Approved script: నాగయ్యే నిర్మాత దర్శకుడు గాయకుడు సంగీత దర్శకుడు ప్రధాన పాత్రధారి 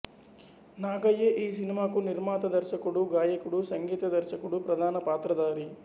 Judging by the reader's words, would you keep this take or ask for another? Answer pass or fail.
fail